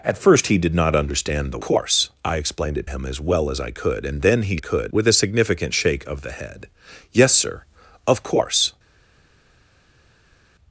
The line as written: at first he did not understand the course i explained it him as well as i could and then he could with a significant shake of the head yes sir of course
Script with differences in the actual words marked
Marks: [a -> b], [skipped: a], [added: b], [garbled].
at first he did not understand the course i explained it him as well as i could and then he could with a significant shake of the head yes sir of course